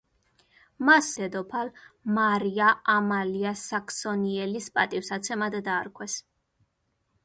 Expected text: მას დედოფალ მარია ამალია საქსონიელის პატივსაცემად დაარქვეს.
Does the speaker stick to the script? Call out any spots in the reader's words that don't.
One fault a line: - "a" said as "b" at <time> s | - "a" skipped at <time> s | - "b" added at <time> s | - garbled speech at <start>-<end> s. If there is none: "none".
none